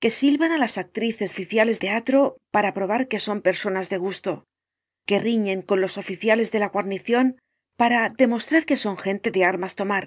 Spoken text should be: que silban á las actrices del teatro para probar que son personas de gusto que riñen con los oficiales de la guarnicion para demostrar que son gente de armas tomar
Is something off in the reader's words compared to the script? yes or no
yes